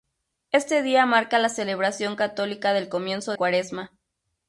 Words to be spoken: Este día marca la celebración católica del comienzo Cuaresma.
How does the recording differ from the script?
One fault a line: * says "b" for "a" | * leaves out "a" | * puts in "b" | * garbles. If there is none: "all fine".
all fine